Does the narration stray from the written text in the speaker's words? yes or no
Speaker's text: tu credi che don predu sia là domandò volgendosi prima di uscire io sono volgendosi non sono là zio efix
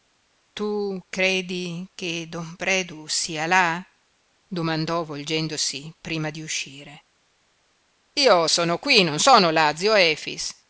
yes